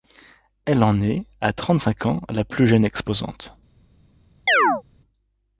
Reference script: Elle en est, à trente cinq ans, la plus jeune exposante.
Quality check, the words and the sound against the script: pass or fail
fail